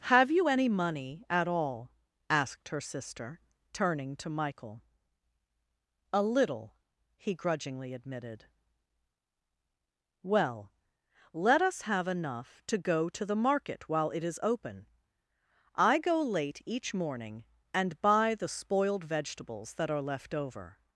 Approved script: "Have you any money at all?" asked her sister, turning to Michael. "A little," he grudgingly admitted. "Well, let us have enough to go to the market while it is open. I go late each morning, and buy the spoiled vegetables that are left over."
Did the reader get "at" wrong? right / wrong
right